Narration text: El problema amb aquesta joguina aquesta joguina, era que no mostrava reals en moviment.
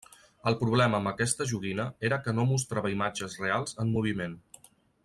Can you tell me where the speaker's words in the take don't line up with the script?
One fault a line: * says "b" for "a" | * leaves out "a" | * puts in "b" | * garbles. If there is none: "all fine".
* leaves out "aquesta joguina"
* puts in "imatges"